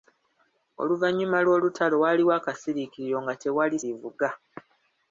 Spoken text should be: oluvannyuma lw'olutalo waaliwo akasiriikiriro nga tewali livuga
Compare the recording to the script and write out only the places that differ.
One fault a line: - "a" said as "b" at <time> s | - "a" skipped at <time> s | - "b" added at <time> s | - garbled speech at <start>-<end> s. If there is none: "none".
none